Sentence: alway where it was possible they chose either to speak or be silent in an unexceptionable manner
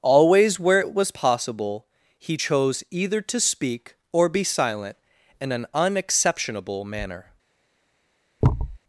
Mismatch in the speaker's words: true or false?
true